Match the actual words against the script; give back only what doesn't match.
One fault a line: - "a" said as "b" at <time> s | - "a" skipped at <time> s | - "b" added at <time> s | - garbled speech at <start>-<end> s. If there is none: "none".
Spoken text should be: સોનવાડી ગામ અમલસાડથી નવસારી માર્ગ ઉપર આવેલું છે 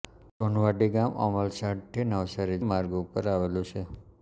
none